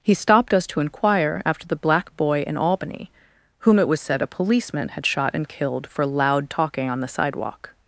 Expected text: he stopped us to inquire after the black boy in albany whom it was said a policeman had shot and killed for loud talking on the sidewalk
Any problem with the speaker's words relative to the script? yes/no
no